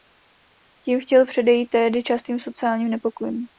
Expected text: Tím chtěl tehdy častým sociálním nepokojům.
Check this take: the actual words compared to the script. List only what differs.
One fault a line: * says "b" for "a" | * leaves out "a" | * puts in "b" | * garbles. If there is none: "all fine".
* puts in "předejít"